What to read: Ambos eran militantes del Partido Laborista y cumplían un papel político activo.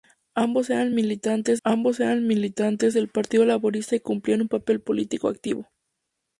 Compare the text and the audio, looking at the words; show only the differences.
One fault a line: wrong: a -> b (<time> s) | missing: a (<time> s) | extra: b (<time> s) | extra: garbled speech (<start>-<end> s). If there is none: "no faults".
extra: ambos eran militantes (1.6 s)